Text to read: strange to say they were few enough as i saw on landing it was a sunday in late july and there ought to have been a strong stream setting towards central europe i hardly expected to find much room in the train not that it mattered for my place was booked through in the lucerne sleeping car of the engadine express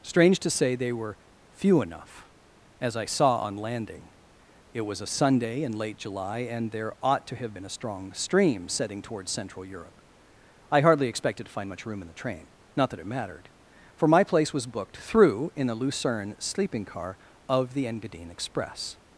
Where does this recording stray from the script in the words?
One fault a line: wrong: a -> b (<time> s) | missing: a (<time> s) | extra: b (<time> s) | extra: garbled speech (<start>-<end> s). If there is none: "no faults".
no faults